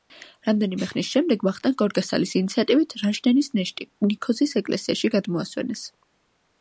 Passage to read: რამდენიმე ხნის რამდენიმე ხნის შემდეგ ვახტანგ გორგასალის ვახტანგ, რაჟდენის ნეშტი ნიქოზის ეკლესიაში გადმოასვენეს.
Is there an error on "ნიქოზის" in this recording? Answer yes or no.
no